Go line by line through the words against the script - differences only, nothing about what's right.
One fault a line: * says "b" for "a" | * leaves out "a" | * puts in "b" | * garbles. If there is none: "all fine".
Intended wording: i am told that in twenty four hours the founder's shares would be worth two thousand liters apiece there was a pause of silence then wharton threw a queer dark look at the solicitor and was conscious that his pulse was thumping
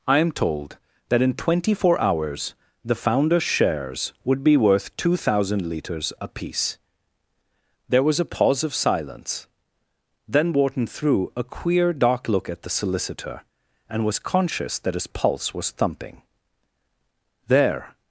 * puts in "there"